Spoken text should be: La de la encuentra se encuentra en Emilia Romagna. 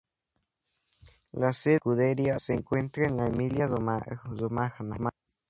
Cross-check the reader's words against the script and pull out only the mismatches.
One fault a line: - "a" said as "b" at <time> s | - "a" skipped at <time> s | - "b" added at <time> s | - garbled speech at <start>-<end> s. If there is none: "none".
- "sede" added at 1.5 s
- "encuentra" said as "escudería" at 1.7 s
- "la" added at 3.2 s